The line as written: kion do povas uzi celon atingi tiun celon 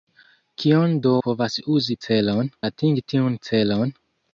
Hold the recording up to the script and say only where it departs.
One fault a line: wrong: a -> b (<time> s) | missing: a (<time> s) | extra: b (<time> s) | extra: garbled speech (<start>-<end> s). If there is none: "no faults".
no faults